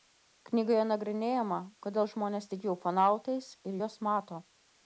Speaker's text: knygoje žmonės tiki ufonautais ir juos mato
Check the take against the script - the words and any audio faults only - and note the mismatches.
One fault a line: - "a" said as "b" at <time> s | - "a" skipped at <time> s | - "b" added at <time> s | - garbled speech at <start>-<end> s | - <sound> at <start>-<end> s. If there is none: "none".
- "nagrinėjama kodėl" added at 0.9 s